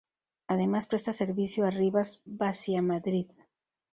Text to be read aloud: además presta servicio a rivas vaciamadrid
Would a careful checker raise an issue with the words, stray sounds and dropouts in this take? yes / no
no